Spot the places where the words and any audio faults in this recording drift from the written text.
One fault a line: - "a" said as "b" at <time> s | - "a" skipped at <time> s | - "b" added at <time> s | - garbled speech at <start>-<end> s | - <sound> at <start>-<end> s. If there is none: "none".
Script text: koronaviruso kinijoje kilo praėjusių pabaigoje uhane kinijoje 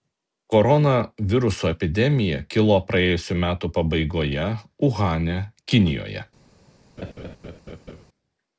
- "kinijoje" said as "epidemija" at 1.7 s
- "metų" added at 3.4 s
- laugh at 7.0-8.1 s